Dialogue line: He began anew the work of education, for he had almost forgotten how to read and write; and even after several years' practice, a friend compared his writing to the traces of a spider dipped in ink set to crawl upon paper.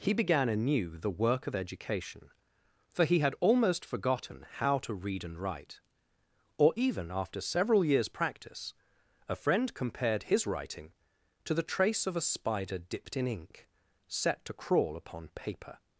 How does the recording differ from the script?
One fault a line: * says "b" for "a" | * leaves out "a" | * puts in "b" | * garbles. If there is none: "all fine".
* says "or" for "and"
* says "trace" for "traces"